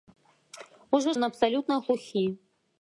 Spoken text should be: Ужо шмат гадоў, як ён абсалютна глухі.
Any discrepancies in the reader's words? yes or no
yes